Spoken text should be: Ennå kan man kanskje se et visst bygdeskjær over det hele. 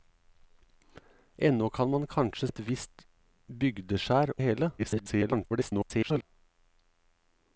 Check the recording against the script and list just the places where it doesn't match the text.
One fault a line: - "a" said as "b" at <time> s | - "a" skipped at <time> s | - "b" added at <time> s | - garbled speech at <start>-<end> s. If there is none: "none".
- "se" skipped at 2.5 s
- "over" skipped at 4.3 s
- garbled speech at 4.8-6.2 s